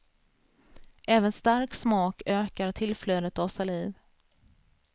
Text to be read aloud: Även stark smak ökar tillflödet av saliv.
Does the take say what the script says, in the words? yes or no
yes